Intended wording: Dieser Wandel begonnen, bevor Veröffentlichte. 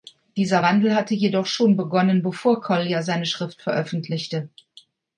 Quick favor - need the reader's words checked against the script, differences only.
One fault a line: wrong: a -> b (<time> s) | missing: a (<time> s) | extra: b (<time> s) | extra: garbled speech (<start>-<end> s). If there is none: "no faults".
extra: hatte jedoch schon (0.9 s)
extra: Collier seine Schrift (2.6 s)